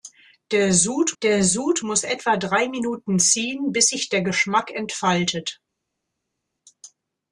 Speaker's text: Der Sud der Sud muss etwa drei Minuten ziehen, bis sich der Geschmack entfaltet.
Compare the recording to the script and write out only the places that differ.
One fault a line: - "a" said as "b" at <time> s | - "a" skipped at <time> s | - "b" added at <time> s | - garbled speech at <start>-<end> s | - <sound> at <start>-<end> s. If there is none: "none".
none